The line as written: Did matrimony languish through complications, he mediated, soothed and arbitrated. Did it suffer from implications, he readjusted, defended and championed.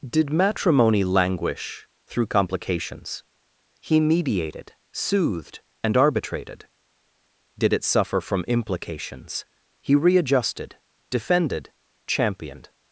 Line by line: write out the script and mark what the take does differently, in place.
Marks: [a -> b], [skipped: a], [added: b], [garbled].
Did matrimony languish through complications, he mediated, soothed and arbitrated. Did it suffer from implications, he readjusted, defended [skipped: and] championed.